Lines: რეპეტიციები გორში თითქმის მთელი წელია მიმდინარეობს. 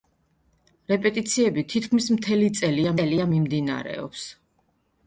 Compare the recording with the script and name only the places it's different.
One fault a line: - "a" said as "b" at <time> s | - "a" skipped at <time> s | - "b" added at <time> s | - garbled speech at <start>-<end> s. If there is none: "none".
- "გორში" skipped at 1.6 s
- "წელია" added at 2.9 s